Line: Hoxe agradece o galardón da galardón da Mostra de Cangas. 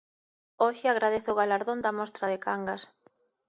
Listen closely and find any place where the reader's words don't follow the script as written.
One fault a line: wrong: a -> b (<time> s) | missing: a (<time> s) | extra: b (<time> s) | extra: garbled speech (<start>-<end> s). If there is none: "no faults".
missing: galardón da (1.9 s)